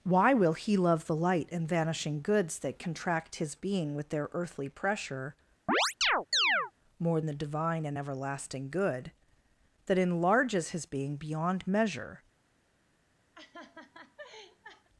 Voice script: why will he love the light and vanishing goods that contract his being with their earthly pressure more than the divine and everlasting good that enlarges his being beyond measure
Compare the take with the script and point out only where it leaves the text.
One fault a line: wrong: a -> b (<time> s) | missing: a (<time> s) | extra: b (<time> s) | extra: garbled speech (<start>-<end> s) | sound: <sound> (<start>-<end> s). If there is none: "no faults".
sound: chirp (5.7-6.7 s)
missing: than (7.2 s)
sound: laugh (13.3-14.9 s)